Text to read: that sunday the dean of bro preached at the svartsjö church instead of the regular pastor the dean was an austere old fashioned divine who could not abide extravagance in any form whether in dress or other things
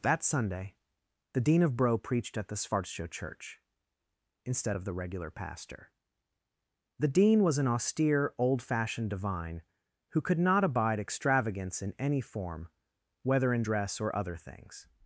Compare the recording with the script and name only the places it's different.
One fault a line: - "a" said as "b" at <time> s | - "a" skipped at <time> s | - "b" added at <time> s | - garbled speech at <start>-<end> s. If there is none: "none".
none